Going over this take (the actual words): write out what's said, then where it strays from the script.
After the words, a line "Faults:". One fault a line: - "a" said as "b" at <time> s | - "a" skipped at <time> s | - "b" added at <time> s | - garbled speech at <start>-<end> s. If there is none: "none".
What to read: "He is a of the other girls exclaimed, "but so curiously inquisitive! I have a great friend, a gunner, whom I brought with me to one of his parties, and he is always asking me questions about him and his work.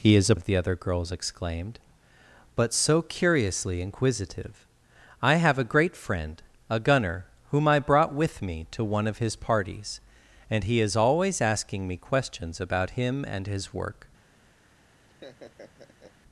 "He is a of the other girls exclaimed, "but so curiously inquisitive! I have a great friend, a gunner, whom I brought with me to one of his parties, and he is always asking me questions about him and his work.
Faults:
none